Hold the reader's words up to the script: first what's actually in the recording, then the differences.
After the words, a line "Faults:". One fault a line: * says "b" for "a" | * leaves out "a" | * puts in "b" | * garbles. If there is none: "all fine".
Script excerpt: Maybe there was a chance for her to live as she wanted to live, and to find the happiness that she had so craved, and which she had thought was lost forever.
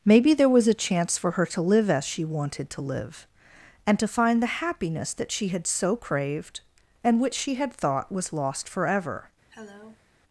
Maybe there was a chance for her to live as she wanted to live, and to find the happiness that she had so craved, and which she had thought was lost forever.
Faults:
all fine